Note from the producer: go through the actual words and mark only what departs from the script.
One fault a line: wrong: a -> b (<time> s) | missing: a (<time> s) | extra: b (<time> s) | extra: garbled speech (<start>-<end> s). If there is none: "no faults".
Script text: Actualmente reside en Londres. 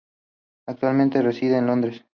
no faults